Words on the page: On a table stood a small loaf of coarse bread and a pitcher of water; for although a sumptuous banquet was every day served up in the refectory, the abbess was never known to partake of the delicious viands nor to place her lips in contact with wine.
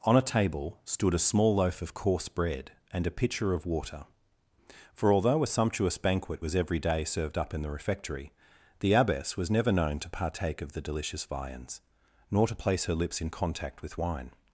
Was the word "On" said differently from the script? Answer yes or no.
no